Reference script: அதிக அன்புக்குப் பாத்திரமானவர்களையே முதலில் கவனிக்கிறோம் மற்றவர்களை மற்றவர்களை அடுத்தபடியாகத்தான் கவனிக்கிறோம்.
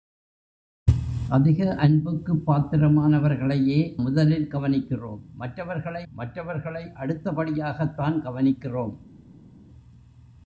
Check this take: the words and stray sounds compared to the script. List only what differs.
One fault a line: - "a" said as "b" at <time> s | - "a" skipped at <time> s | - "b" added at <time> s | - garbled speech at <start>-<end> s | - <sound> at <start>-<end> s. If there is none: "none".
none